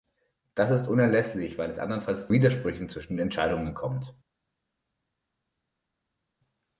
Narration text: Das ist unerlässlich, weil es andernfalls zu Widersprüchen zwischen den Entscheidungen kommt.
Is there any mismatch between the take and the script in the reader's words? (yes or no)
yes